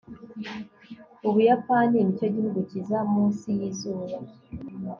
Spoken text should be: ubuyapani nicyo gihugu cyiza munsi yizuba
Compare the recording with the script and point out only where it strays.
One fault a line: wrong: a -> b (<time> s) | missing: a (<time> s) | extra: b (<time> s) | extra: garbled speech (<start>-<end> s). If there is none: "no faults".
no faults